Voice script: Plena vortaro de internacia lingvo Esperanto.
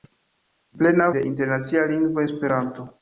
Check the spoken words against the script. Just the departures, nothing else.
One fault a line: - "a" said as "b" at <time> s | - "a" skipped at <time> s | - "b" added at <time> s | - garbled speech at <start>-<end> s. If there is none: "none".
- "vortaro" skipped at 1.1 s